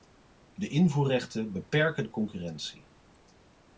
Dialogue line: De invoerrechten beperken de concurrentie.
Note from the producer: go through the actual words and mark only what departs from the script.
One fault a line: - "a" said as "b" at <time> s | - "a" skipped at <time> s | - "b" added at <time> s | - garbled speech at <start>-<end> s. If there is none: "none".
none